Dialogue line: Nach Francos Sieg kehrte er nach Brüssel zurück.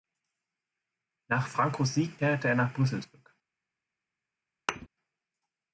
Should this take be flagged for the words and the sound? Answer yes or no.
yes